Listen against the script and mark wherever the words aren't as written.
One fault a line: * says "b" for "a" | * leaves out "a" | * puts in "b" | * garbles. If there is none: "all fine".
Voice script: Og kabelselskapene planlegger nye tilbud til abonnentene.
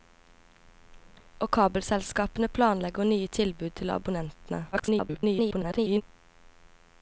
* garbles